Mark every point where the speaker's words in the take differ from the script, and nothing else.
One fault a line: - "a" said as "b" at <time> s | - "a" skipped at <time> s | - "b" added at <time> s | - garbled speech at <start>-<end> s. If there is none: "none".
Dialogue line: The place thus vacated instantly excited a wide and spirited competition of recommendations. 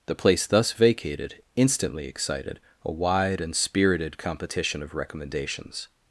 none